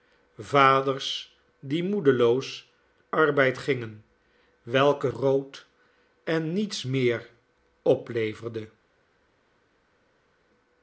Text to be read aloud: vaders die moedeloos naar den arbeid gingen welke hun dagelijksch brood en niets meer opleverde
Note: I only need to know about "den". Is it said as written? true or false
false